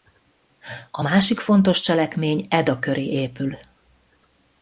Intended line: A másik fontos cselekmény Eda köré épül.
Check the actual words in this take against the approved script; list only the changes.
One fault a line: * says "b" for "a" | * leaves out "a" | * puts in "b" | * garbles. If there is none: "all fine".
all fine